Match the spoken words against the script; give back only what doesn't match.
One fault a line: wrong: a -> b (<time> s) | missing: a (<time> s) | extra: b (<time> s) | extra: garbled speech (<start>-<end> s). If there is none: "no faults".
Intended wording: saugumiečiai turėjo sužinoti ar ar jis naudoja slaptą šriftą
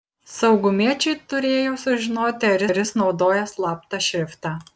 no faults